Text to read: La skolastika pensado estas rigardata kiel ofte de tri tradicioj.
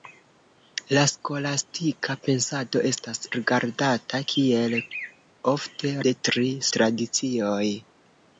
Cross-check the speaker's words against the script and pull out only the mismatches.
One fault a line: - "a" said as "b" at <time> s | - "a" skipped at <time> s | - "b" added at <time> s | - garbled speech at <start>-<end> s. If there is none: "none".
none